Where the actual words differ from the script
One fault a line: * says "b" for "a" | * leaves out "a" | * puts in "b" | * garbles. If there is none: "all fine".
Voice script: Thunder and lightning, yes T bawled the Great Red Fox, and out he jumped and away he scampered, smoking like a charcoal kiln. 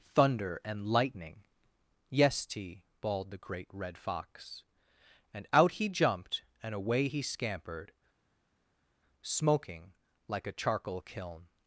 all fine